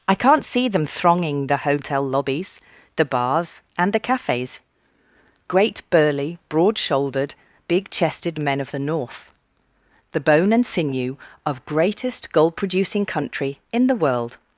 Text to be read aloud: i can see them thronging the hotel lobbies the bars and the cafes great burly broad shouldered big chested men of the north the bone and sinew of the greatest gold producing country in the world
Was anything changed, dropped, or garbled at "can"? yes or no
yes